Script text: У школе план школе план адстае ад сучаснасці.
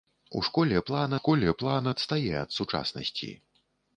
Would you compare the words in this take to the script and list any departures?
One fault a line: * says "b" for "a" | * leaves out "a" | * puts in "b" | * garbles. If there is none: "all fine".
all fine